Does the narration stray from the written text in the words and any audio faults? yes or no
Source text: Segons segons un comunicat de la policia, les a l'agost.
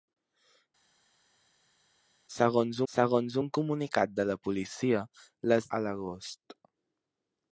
no